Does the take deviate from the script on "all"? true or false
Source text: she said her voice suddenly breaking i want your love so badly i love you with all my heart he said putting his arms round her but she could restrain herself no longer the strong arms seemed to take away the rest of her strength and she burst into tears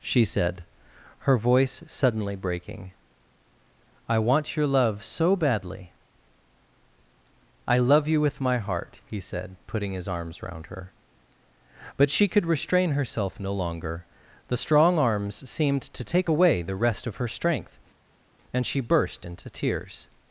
true